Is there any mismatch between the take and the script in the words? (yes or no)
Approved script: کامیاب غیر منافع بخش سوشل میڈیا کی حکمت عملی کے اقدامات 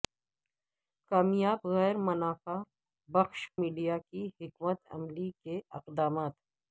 yes